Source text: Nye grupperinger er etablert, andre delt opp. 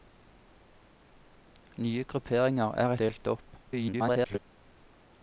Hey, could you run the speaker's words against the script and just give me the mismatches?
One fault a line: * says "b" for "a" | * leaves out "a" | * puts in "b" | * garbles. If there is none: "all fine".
* leaves out "etablert andre"
* garbles